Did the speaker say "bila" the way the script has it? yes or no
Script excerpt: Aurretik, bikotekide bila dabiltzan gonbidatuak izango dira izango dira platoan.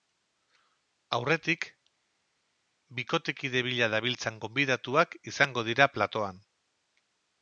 yes